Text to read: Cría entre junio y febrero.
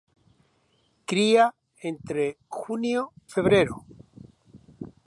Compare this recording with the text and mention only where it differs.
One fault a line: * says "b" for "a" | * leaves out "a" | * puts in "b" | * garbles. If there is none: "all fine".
* leaves out "y"